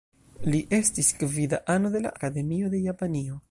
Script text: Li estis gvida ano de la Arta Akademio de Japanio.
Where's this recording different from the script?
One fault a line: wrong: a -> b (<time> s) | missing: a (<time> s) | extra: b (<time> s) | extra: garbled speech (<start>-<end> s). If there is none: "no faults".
missing: Arta (2.1 s)